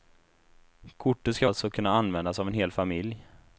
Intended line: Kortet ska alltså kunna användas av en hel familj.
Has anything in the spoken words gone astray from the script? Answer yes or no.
no